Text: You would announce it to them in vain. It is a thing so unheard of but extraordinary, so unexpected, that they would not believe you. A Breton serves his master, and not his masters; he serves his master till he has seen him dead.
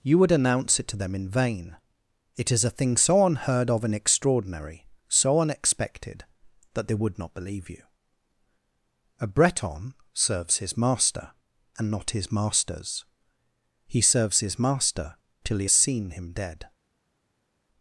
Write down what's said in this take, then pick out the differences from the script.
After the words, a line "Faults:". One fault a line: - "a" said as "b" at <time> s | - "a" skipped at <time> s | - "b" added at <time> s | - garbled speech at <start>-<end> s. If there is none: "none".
You would announce it to them in vain. It is a thing so unheard of and extraordinary, so unexpected, that they would not believe you. A Breton serves his master, and not his masters; he serves his master till he has seen him dead.
Faults:
- "but" said as "and" at 3.8 s